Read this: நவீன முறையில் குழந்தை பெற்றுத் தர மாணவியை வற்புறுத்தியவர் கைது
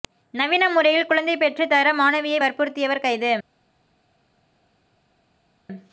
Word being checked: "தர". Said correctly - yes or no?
yes